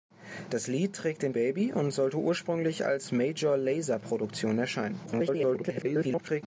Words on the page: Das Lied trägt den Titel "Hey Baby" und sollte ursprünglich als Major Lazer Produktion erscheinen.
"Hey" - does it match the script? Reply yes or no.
no